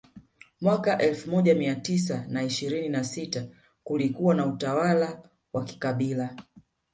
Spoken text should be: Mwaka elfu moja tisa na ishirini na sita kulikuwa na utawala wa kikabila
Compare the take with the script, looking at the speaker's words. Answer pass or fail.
fail